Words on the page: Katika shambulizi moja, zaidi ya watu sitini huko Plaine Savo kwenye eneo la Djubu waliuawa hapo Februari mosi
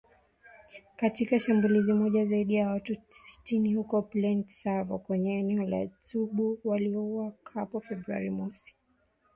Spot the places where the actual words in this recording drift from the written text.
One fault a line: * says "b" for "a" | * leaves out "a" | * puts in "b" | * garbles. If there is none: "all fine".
all fine